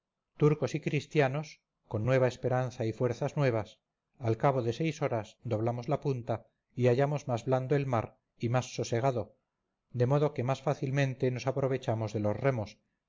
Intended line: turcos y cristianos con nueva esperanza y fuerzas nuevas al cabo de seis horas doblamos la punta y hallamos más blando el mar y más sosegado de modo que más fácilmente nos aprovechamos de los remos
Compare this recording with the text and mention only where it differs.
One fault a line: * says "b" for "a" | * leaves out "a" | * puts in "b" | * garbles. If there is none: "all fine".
all fine